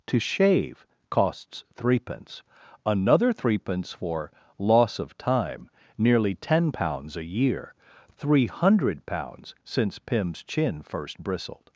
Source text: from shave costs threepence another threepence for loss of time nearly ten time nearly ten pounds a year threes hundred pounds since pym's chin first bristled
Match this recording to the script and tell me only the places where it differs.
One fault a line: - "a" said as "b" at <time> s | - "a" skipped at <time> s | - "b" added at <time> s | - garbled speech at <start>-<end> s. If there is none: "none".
- "from" said as "to" at 0.1 s
- "time nearly ten" skipped at 6.7 s
- "threes" said as "three" at 8.2 s